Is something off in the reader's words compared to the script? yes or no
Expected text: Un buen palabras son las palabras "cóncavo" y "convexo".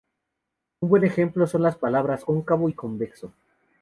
yes